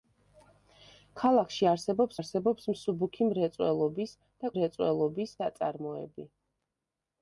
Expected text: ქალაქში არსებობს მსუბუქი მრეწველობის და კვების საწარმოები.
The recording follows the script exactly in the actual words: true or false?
false